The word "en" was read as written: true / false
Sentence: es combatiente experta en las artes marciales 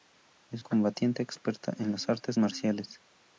true